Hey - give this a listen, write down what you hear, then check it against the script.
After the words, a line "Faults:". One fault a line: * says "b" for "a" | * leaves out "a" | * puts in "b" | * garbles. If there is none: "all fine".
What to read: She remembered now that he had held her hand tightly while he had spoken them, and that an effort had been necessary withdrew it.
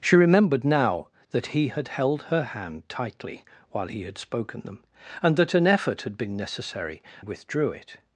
She remembered now that he had held her hand tightly while he had spoken them, and that an effort had been necessary withdrew it.
Faults:
all fine